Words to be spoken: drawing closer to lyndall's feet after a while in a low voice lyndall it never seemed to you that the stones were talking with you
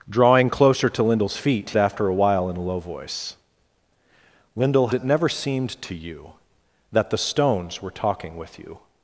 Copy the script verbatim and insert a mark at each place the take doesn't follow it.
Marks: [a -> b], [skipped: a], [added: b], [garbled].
drawing closer to lyndall's feet after a while in a low voice lyndall it never seemed to you that the stones were talking with you